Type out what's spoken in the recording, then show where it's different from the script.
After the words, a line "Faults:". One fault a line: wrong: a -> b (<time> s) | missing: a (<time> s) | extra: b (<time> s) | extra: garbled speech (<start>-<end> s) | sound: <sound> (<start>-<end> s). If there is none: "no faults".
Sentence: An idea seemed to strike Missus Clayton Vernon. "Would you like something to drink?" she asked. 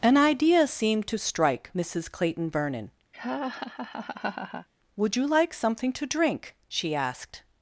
An idea seemed to strike Missus Clayton Vernon. "Would you like something to drink?" she asked.
Faults:
sound: laugh (3.1-4.7 s)